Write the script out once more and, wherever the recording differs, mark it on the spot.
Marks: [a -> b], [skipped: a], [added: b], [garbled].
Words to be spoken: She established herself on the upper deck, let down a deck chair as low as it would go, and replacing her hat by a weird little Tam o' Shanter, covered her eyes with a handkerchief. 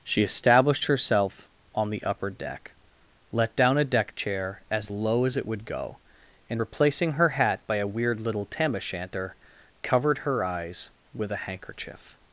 She established herself on the upper deck, let down a deck chair as low as it would go, and replacing her hat by a weird little Tam o' Shanter, covered her eyes with a handkerchief.